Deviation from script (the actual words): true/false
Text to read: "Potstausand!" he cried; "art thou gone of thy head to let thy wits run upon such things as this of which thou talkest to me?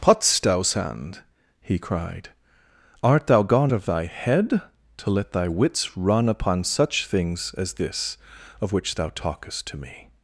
false